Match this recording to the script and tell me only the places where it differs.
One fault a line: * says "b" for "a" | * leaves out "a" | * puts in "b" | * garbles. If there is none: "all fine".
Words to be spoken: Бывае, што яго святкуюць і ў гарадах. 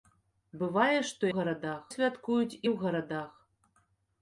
* says "гарадах" for "яго"